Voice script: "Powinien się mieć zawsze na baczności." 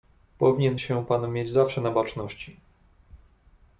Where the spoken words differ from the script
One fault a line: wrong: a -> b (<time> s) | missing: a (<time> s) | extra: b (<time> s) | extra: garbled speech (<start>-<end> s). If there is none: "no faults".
extra: pan (1.1 s)